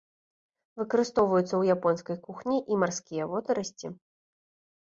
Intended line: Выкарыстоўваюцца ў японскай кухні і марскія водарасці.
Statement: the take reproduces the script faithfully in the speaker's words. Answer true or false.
true